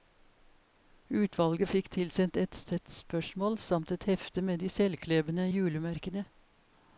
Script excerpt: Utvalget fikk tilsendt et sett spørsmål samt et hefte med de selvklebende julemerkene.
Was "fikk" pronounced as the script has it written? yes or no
yes